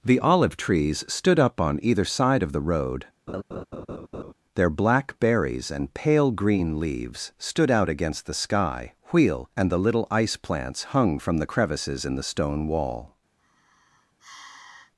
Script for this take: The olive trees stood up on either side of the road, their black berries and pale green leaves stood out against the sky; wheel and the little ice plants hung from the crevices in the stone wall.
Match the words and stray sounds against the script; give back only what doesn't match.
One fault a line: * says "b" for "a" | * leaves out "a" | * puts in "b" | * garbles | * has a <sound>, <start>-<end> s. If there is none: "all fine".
* has a laugh, 3.3-4.3 s
* has a sigh, 13.4-14.9 s